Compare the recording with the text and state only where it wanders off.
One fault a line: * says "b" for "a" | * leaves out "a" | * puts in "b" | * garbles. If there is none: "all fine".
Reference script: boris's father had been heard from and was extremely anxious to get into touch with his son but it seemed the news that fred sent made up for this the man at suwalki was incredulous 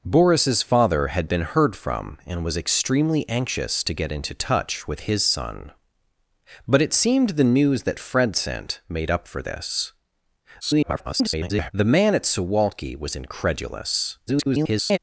* garbles
* garbles